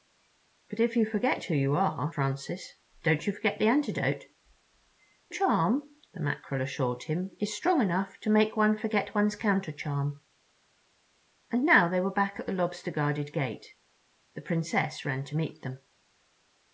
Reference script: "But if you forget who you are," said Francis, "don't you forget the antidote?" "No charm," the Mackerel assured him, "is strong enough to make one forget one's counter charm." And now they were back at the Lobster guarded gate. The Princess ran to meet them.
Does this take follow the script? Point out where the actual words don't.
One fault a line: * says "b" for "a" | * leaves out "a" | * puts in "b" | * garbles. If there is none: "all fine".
* leaves out "said"
* leaves out "No"